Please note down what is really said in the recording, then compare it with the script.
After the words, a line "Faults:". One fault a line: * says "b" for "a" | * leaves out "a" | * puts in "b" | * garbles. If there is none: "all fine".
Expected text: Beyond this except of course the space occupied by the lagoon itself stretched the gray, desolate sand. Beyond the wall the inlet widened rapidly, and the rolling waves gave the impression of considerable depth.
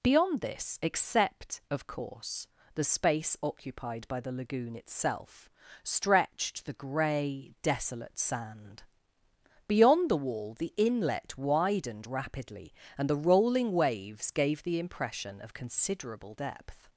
Beyond this except of course the space occupied by the lagoon itself stretched the gray, desolate sand. Beyond the wall the inlet widened rapidly, and the rolling waves gave the impression of considerable depth.
Faults:
all fine